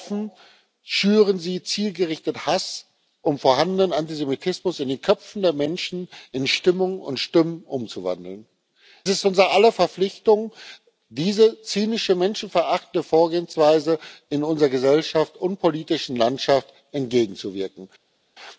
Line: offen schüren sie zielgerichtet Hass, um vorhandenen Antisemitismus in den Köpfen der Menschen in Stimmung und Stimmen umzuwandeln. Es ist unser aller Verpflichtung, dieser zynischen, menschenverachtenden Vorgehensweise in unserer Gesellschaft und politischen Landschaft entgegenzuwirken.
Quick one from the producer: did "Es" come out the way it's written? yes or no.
no